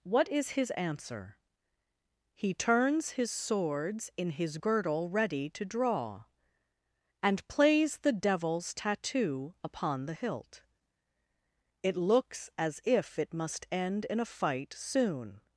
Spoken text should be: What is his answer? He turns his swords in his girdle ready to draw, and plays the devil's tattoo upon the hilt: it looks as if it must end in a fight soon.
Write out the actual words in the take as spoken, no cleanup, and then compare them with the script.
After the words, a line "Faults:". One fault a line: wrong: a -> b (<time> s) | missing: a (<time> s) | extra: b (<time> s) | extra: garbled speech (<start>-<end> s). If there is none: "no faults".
What is his answer? He turns his swords in his girdle ready to draw, and plays the devil's tattoo upon the hilt: it looks as if it must end in a fight soon.
Faults:
no faults